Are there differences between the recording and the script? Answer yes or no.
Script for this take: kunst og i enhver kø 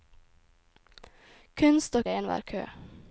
no